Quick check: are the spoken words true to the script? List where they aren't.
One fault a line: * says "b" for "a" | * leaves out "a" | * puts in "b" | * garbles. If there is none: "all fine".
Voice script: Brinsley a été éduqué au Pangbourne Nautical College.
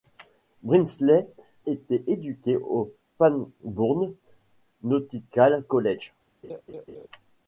* leaves out "a"